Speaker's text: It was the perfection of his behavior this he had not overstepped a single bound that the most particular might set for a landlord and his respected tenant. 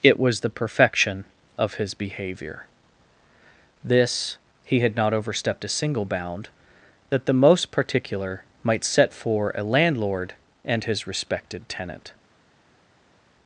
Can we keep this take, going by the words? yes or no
yes